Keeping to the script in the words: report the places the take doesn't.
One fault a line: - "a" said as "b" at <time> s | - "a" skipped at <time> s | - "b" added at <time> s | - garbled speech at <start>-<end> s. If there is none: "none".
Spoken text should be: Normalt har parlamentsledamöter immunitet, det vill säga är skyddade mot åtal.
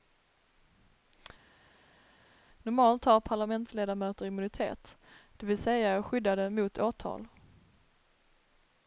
none